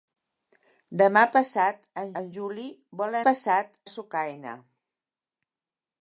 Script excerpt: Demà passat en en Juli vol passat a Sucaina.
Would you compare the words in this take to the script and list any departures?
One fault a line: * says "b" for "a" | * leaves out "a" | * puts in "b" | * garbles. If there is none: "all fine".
all fine